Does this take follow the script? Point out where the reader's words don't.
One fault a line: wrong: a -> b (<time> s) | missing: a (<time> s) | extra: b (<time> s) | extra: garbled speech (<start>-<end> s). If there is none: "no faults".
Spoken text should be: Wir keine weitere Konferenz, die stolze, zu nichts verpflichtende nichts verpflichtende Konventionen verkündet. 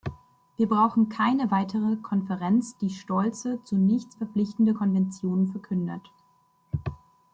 extra: brauchen (0.7 s)
missing: nichts verpflichtende (4.7 s)